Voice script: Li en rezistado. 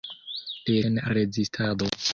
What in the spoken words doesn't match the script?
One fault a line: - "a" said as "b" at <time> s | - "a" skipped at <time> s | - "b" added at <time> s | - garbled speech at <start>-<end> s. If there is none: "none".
none